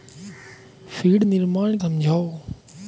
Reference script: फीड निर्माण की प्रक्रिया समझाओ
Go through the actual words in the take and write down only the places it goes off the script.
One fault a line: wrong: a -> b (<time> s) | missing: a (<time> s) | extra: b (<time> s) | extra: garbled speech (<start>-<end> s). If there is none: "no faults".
missing: की प्रक्रिया (1.8 s)